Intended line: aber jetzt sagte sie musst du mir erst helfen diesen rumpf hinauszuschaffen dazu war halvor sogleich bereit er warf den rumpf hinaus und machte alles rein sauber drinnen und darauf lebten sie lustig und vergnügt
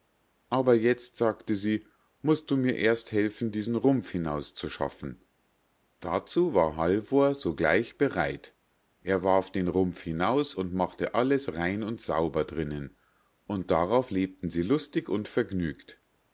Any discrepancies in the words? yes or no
yes